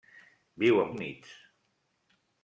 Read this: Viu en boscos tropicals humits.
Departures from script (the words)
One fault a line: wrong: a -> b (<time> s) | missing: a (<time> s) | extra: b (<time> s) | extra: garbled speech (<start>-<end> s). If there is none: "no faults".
missing: boscos tropicals (0.9 s)